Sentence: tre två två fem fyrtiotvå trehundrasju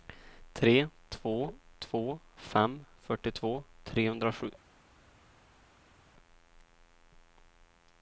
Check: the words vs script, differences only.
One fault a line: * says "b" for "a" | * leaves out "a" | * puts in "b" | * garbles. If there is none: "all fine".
all fine